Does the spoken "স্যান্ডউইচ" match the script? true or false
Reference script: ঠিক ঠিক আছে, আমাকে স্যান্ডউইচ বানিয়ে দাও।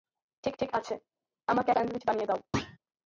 true